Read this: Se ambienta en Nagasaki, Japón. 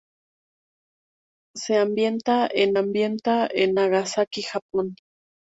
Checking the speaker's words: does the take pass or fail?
fail